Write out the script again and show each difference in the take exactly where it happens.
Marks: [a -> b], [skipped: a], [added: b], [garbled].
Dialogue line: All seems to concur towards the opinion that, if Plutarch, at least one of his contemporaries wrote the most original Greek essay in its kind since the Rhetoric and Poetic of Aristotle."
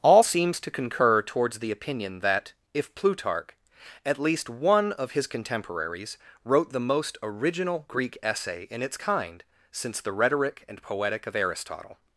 All seems to concur towards the opinion that, if Plutarch, at least one of his contemporaries wrote the most original Greek essay in its kind since the Rhetoric and Poetic of Aristotle."